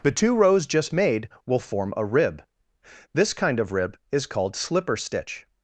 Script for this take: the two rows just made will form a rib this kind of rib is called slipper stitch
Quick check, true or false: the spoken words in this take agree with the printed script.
true